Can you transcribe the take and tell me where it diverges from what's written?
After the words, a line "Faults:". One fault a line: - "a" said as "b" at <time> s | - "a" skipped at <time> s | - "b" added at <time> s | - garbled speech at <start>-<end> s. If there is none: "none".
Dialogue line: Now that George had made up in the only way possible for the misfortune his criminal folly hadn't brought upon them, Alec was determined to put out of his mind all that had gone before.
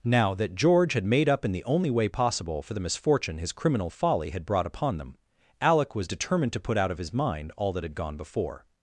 Now that George had made up in the only way possible for the misfortune his criminal folly had brought upon them, Alec was determined to put out of his mind all that had gone before.
Faults:
- "hadn't" said as "had" at 4.3 s